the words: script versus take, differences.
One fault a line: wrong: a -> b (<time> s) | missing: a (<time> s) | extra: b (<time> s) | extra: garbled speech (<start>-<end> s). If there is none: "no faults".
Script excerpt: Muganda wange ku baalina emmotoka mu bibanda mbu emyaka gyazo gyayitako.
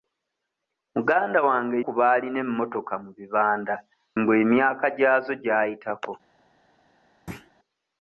no faults